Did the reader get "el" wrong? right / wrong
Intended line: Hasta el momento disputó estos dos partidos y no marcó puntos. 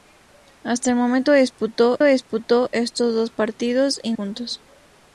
right